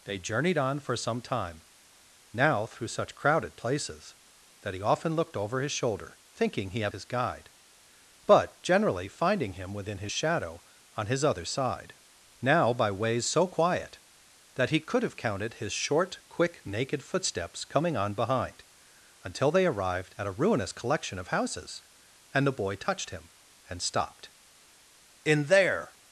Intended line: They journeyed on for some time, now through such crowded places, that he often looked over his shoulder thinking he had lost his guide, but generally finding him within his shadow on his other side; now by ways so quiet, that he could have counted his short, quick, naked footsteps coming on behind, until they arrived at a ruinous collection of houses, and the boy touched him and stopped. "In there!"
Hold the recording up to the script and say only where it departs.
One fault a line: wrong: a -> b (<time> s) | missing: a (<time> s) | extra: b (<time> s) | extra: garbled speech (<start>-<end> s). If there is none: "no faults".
missing: lost (6.9 s)